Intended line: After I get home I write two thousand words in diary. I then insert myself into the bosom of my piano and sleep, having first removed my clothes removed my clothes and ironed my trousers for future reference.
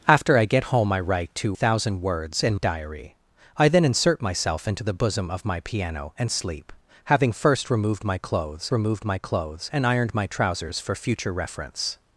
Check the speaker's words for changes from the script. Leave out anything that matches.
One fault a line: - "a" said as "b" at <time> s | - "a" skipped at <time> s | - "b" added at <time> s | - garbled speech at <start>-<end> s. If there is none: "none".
none